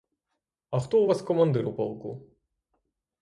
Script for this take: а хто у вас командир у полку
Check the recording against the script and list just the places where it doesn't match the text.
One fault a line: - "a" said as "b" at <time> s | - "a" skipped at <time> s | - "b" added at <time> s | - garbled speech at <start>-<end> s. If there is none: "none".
none